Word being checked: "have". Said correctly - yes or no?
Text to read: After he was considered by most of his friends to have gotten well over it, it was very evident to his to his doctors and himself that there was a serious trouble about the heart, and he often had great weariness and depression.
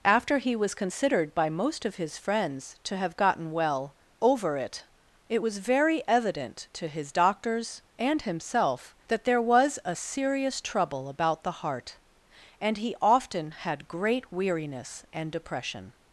yes